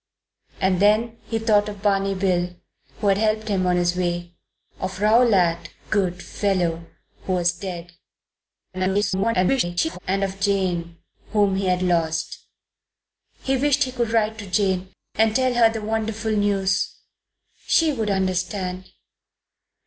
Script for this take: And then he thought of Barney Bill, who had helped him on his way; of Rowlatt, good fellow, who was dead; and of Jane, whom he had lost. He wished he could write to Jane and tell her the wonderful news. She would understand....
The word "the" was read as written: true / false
true